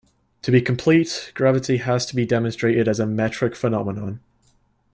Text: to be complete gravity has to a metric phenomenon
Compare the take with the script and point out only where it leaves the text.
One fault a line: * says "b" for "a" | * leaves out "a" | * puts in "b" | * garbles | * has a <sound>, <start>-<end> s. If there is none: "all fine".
* puts in "be demonstrated as"